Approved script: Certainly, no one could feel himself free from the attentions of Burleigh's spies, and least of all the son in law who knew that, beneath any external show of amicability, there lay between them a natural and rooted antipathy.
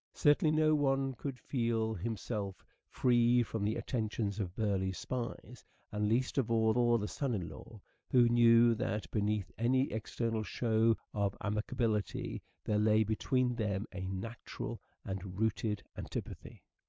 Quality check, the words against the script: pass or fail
fail